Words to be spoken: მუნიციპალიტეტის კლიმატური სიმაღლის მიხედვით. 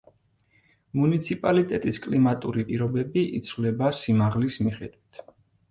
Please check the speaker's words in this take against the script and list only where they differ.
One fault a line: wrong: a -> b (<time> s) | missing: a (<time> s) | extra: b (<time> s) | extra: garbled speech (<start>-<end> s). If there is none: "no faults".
extra: პირობები იცვლება (2.7 s)